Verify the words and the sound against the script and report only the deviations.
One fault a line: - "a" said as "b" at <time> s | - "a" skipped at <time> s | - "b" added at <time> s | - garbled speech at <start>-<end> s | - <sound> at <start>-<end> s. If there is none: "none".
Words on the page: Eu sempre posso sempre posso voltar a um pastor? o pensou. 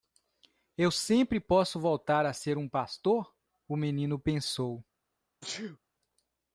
- "sempre posso" skipped at 1.8 s
- "ser" added at 2.3 s
- "menino" added at 3.8 s
- sneeze at 5.4-5.8 s